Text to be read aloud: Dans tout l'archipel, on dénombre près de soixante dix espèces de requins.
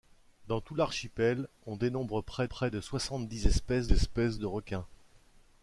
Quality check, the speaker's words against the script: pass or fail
fail